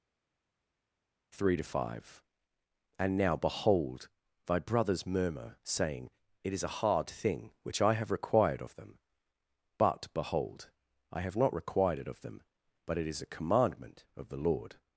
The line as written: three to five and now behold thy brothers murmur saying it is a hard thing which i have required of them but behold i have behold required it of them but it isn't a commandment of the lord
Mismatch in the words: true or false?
true